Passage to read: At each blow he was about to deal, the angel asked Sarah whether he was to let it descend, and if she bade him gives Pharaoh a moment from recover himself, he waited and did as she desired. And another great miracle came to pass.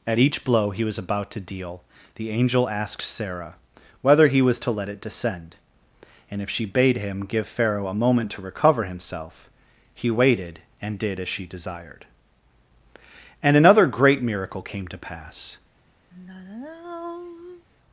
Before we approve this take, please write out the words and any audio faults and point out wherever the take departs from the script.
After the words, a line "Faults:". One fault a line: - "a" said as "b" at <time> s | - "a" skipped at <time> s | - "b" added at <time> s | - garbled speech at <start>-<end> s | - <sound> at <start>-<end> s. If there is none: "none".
At each blow he was about to deal, the angel asked Sarah whether he was to let it descend, and if she bade him give Pharaoh a moment to recover himself, he waited and did as she desired. And another great miracle came to pass.
Faults:
- "gives" said as "give" at 7.3 s
- "from" said as "to" at 8.3 s
- sigh at 16.1-17.7 s